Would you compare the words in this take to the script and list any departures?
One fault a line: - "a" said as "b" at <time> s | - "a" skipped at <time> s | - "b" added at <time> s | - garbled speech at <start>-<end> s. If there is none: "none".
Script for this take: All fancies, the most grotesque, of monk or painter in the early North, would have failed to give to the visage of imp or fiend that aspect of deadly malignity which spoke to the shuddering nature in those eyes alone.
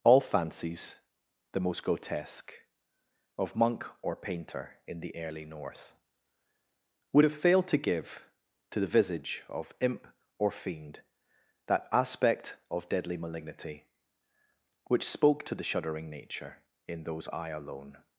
- "eyes" said as "eye" at 17.3 s